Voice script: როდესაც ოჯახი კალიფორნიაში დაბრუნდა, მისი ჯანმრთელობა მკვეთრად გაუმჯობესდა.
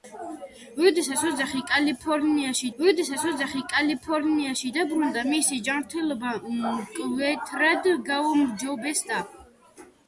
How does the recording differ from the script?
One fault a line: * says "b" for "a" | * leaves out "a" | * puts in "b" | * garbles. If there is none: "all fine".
* puts in "როდესაც ოჯახი კალიფორნიაში"